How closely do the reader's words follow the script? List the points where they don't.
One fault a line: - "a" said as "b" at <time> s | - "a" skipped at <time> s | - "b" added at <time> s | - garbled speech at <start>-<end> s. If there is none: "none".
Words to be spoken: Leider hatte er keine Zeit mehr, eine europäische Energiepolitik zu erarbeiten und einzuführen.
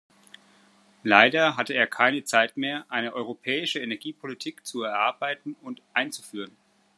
none